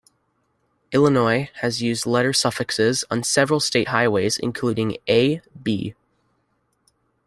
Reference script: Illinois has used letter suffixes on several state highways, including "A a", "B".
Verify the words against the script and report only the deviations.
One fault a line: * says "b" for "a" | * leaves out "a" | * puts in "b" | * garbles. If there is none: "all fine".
* leaves out "a"